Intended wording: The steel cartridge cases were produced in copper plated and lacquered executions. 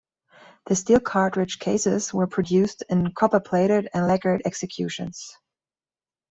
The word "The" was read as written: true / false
true